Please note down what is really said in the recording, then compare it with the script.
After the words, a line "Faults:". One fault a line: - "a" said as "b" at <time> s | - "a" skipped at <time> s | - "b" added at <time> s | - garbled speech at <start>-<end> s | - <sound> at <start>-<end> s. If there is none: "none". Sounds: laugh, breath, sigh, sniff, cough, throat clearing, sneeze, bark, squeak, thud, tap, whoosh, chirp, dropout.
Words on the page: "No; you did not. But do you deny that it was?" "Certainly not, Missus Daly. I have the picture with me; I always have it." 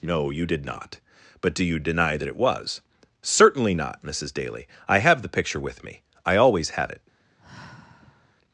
"No; you did not. But do you deny that it was?" "Certainly not, Missus Daly. I have the picture with me; I always have it."
Faults:
- sigh at 7.4-8.4 s